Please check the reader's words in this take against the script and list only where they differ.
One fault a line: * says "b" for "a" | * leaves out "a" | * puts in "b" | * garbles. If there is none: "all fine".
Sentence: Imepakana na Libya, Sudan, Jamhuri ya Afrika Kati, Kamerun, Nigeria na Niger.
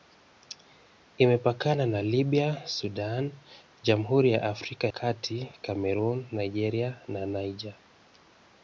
all fine